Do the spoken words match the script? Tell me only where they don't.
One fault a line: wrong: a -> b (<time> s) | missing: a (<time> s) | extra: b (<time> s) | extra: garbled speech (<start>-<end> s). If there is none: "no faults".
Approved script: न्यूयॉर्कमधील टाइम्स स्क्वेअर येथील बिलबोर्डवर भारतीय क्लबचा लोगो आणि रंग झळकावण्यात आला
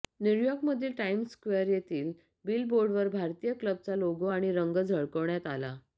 no faults